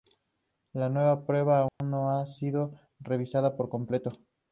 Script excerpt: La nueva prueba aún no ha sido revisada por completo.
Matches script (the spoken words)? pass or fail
pass